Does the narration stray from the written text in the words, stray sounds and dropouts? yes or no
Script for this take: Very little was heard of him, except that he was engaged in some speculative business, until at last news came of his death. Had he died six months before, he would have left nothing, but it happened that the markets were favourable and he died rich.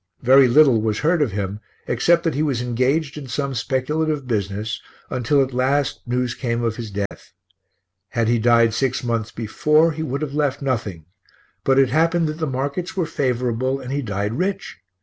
yes